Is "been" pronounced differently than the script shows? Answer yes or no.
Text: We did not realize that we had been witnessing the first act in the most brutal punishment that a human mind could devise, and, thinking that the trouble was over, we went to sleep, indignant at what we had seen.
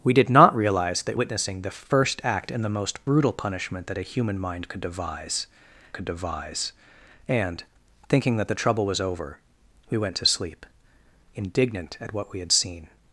yes